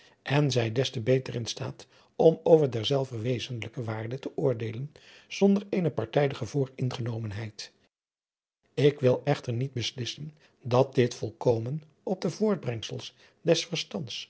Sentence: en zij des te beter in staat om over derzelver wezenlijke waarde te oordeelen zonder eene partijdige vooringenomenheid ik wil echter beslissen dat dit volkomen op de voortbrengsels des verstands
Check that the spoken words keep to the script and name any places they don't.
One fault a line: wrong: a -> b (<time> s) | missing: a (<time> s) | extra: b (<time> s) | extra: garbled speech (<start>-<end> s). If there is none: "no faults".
extra: niet (9.5 s)